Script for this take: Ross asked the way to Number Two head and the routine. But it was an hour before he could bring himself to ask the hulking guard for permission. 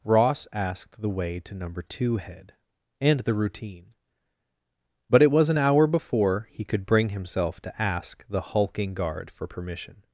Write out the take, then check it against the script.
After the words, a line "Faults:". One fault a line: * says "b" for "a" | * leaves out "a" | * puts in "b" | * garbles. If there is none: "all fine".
Ross asked the way to Number Two head and the routine. But it was an hour before he could bring himself to ask the hulking guard for permission.
Faults:
all fine